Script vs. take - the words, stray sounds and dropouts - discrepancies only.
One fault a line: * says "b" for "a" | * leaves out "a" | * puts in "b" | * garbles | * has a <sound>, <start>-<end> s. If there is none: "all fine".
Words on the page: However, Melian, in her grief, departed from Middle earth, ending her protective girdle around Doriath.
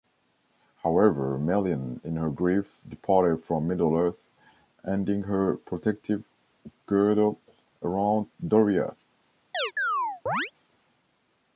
* has a chirp, 9.5-10.5 s